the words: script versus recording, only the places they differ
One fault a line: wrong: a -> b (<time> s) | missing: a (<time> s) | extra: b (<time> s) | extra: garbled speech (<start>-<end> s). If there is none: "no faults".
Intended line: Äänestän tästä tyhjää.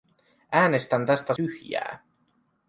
no faults